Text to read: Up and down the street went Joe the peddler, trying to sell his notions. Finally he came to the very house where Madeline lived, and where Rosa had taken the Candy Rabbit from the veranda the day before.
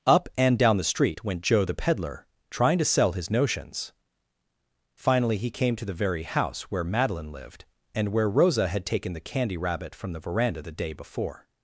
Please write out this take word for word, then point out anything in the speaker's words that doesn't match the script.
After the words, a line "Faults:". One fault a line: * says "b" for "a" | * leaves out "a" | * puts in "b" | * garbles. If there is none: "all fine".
Up and down the street went Joe the peddler, trying to sell his notions. Finally he came to the very house where Madeline lived, and where Rosa had taken the Candy Rabbit from the veranda the day before.
Faults:
all fine